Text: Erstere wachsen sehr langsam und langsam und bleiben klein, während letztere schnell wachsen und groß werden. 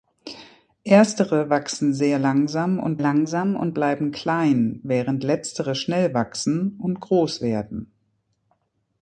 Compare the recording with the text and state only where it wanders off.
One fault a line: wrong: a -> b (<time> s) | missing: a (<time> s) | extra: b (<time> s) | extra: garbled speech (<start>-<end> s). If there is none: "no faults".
no faults